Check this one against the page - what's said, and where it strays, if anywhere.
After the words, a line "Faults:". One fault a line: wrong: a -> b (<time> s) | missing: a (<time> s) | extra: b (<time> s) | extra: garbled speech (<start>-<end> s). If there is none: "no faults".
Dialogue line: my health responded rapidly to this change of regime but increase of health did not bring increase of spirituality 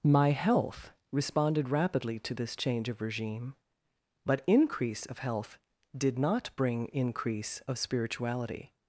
my health responded rapidly to this change of regime but increase of health did not bring increase of spirituality
Faults:
no faults